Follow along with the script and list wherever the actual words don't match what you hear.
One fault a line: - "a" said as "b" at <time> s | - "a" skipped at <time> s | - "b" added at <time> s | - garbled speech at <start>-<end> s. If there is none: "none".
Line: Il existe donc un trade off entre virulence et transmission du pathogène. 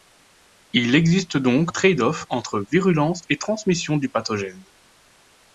- "un" skipped at 1.7 s